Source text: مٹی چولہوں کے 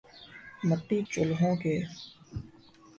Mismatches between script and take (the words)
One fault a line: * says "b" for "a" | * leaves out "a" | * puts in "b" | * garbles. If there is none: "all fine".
all fine